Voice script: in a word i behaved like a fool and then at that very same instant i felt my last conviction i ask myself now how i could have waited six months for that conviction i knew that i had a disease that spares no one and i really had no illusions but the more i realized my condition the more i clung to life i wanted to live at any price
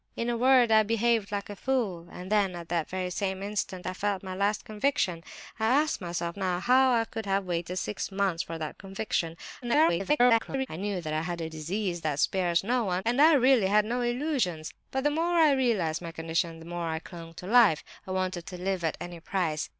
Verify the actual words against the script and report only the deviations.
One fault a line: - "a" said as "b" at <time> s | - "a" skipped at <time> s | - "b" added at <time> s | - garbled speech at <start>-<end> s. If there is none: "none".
- garbled speech at 9.6-10.7 s